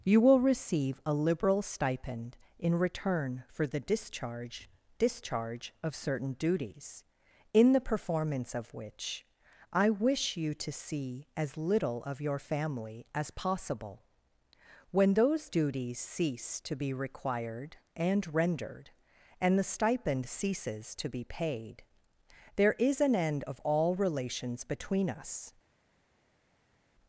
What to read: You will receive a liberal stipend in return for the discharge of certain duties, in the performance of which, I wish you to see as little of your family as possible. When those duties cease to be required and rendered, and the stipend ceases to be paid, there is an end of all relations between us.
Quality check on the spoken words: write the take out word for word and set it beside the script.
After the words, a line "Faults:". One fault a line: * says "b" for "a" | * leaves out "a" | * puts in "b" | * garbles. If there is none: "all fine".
You will receive a liberal stipend in return for the discharge discharge of certain duties, in the performance of which, I wish you to see as little of your family as possible. When those duties cease to be required and rendered, and the stipend ceases to be paid, there is an end of all relations between us.
Faults:
* puts in "discharge"